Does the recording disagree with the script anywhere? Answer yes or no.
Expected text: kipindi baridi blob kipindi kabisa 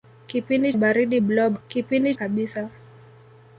no